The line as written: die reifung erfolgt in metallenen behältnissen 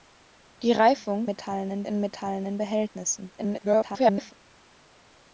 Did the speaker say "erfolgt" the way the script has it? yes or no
no